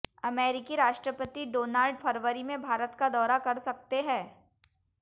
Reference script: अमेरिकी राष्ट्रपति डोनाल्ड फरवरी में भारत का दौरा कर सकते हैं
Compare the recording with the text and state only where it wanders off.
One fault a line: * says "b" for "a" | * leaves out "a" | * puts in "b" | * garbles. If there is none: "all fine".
all fine